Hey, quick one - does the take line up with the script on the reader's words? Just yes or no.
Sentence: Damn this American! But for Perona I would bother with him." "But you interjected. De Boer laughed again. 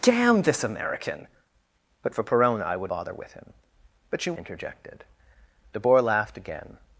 yes